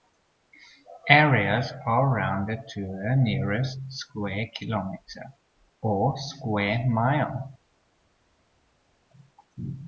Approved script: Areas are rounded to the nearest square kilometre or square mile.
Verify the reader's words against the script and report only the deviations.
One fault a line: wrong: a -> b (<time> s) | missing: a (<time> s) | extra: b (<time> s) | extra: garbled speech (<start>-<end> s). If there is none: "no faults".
no faults